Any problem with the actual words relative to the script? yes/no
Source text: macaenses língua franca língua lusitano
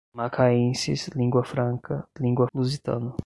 no